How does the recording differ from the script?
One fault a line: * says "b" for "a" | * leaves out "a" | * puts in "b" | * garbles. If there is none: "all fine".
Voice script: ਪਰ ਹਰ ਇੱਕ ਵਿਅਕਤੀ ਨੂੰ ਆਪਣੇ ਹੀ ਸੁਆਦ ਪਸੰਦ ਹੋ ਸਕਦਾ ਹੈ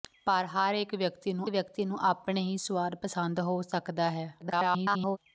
* puts in "ਵਿਅਕਤੀ ਨੂੰ"
* garbles